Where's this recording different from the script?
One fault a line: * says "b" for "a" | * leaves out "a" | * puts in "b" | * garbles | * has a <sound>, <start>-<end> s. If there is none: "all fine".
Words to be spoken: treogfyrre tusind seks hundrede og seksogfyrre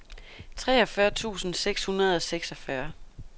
all fine